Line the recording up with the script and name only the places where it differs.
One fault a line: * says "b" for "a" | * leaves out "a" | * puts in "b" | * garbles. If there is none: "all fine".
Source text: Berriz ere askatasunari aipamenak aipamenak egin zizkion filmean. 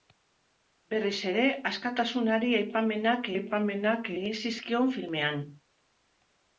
all fine